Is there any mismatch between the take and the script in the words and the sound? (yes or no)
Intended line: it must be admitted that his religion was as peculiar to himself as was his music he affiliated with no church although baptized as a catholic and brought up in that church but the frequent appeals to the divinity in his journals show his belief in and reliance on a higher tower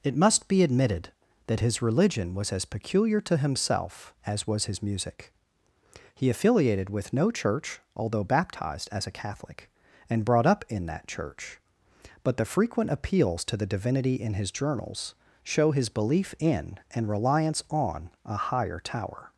no